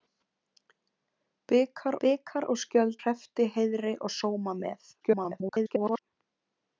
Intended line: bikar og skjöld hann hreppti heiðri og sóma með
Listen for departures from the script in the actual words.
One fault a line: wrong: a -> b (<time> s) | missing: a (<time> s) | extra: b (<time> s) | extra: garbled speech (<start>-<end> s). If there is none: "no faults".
extra: bikar (2.0 s)
missing: hann (3.0 s)
extra: garbled speech (5.0-6.0 s)